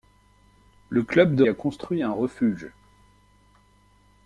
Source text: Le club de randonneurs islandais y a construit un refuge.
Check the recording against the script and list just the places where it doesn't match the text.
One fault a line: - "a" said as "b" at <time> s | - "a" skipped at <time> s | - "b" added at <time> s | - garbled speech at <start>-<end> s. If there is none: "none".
- "randonneurs islandais" skipped at 1.4 s